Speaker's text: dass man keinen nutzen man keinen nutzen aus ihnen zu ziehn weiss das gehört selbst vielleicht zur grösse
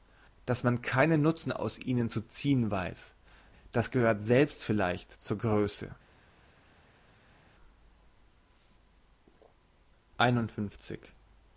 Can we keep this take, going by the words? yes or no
no